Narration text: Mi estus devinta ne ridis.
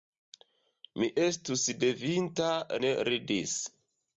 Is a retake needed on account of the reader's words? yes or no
no